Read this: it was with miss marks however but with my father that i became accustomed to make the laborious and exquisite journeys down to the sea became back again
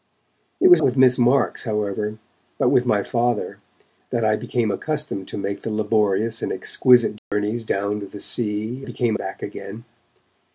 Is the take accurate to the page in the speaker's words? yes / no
yes